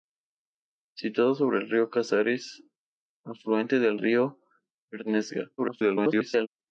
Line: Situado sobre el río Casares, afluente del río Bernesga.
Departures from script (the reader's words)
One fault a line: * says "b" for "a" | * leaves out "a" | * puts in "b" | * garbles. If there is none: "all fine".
* garbles